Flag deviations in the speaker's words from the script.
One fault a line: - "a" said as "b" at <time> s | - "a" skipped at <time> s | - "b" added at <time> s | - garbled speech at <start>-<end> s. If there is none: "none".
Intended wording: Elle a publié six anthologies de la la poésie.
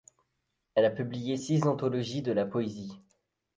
- "la" skipped at 2.4 s